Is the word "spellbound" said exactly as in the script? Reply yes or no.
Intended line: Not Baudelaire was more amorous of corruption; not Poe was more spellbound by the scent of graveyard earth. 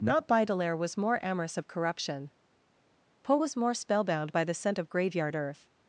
yes